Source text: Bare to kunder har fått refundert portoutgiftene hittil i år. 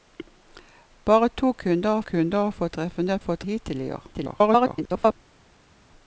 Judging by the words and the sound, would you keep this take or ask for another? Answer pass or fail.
fail